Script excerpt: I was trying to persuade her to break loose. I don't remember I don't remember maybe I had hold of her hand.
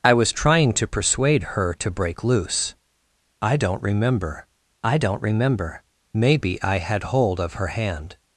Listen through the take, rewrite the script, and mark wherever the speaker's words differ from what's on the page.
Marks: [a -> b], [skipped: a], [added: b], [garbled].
I was trying to persuade her to break loose. I don't remember I don't remember maybe I had hold of her hand.